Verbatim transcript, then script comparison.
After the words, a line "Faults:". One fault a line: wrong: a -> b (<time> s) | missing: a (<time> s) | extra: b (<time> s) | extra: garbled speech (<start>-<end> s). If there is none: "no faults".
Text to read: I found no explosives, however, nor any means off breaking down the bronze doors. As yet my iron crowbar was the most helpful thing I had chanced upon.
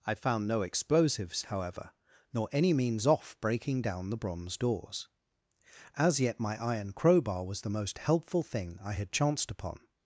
I found no explosives, however, nor any means off breaking down the bronze doors. As yet my iron crowbar was the most helpful thing I had chanced upon.
Faults:
no faults